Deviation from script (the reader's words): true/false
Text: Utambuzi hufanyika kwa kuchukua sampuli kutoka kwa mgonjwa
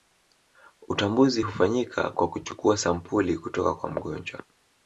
false